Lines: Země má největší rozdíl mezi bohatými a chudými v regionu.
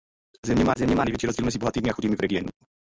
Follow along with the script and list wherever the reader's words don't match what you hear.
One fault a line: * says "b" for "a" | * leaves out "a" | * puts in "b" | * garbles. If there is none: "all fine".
* puts in "země má"